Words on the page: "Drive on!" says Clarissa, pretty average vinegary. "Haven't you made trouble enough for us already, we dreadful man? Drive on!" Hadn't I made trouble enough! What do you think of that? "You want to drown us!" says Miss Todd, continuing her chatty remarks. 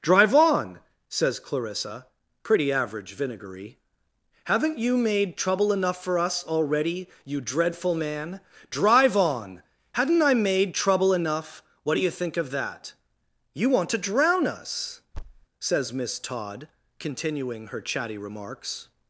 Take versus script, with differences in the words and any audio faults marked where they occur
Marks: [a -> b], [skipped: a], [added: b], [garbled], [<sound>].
"Drive on!" says Clarissa, pretty average vinegary. "Haven't you made trouble enough for us already, [we -> you] dreadful man? Drive on!" Hadn't I made trouble enough! What do you think of that? "You want to drown us!" [thud] says Miss Todd, continuing her chatty remarks.